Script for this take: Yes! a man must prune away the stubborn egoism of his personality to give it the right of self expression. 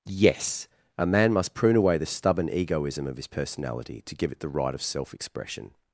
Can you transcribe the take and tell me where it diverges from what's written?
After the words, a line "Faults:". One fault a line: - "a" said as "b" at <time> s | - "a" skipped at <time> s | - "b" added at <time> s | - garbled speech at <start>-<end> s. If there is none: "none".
Yes! a man must prune away the stubborn egoism of his personality to give it the right of self expression.
Faults:
none